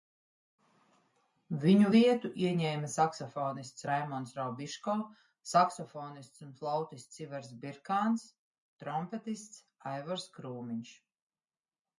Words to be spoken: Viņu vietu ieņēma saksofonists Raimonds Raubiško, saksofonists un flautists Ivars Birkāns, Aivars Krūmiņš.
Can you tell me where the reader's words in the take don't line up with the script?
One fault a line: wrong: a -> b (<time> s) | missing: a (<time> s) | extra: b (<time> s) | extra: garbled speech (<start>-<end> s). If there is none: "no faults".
extra: trompetists (8.8 s)